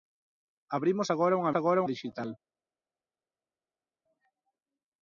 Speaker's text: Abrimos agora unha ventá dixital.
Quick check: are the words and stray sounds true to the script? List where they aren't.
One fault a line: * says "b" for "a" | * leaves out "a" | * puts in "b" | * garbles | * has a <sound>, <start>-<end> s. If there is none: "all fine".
* says "agora" for "ventá"